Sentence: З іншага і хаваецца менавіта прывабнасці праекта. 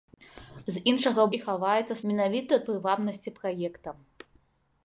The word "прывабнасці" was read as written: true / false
true